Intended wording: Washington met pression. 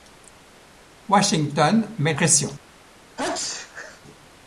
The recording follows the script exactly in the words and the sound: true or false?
false